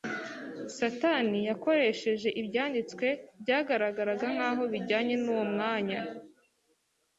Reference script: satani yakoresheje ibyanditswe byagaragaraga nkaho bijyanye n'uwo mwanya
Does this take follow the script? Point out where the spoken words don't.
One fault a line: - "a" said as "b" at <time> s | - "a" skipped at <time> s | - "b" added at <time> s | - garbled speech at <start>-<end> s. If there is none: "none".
none